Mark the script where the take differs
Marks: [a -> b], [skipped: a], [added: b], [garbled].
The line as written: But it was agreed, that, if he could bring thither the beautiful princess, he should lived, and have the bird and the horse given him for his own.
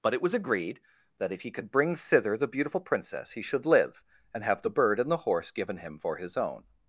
But it was agreed, that, if he could bring thither the beautiful princess, he should [lived, -> live] and have the bird and the horse given him for his own.